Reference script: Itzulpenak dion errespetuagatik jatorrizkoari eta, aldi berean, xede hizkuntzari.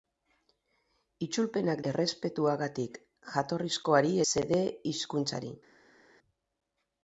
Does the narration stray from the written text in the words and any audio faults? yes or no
yes